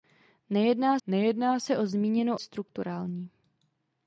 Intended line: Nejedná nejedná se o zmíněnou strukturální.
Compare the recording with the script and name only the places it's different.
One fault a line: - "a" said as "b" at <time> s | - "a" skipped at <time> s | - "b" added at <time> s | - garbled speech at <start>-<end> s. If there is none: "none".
none